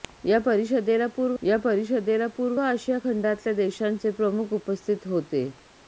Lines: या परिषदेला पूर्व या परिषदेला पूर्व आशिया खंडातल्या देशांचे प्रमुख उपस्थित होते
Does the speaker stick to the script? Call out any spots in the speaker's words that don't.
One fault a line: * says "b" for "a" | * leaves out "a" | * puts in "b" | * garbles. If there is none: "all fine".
all fine